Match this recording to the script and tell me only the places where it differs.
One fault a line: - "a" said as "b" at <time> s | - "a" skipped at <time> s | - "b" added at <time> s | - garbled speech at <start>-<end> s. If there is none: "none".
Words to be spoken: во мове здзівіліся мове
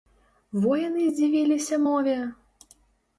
- "мове" said as "яны" at 0.8 s